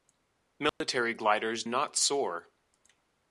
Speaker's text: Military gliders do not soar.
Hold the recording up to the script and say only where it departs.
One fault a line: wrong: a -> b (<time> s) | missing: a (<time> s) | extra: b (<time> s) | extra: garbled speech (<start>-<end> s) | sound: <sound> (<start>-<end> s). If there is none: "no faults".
sound: dropout (0.7-0.8 s)
missing: do (1.6 s)